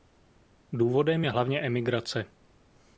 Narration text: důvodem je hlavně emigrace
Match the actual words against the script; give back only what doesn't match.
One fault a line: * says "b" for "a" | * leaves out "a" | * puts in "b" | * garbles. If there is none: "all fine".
all fine